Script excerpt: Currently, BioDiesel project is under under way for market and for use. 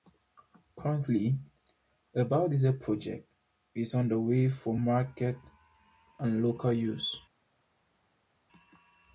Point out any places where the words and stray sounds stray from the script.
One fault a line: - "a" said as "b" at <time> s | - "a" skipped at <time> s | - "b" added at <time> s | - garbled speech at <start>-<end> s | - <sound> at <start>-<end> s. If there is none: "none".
- "a" added at 2.1 s
- "under" skipped at 4.2 s
- "for" said as "local" at 6.4 s